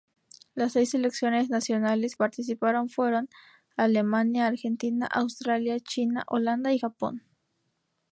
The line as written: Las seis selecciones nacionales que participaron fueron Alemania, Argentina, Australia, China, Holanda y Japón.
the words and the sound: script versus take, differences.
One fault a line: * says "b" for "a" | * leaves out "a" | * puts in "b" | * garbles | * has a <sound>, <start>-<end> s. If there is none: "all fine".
* leaves out "que"